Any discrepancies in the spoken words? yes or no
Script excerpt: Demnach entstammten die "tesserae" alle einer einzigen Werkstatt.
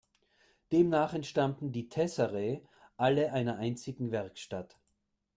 no